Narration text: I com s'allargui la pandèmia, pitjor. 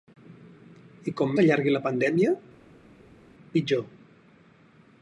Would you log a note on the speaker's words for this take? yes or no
no